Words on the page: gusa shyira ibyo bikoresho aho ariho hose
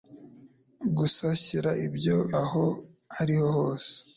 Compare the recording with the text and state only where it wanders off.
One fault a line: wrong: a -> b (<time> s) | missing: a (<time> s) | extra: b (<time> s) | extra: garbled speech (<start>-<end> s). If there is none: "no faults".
missing: bikoresho (2.2 s)